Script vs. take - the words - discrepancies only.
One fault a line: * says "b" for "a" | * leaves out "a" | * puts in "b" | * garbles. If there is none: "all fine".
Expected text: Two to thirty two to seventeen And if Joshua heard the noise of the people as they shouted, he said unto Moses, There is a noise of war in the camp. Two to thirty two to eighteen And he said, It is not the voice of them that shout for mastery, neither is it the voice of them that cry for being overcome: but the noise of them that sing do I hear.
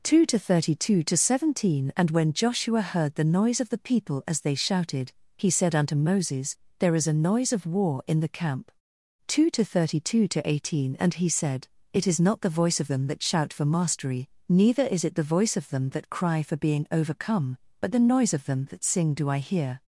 * says "when" for "if"